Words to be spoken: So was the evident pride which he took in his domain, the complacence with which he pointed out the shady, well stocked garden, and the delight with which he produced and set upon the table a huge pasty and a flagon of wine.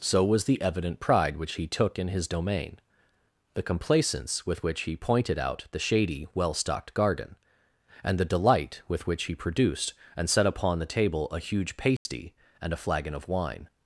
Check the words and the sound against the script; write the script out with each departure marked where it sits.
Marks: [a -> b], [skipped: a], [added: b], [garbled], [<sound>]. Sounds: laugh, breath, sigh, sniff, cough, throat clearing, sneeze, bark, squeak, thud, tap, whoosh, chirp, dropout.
So was the evident pride which he took in his domain, the complacence with which he pointed out the shady, well stocked garden, and the delight with which he produced and set upon the table a huge pasty [dropout] and a flagon of wine.